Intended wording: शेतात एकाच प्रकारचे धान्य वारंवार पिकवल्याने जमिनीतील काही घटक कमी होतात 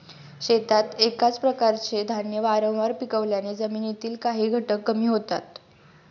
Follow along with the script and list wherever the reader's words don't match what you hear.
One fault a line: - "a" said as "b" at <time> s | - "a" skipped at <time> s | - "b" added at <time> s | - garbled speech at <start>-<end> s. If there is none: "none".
none